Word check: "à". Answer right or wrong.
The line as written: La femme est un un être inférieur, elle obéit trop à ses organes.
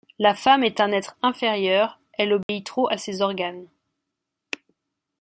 right